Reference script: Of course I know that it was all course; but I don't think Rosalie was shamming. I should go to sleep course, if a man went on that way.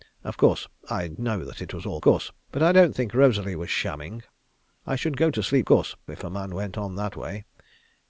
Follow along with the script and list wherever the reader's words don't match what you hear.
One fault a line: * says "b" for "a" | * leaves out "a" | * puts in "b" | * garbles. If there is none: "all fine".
all fine